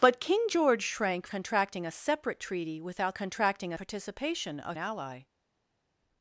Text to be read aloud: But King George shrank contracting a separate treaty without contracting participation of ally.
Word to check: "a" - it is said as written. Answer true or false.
true